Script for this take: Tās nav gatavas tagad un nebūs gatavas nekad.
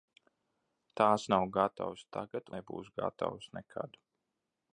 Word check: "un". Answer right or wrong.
wrong